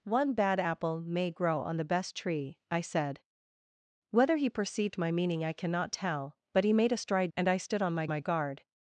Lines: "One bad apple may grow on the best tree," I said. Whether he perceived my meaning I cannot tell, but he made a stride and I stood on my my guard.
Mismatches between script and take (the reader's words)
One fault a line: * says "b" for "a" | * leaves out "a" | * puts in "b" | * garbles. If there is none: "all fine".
all fine